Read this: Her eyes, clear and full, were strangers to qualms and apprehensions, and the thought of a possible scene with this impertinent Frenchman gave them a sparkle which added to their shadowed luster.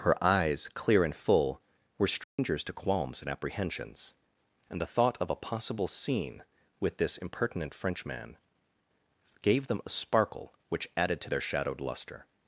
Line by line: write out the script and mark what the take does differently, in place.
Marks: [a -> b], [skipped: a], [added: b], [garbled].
Her eyes, clear and full, were strangers to qualms and apprehensions, and the thought of a possible scene with this impertinent Frenchman gave them a sparkle which added to their shadowed luster.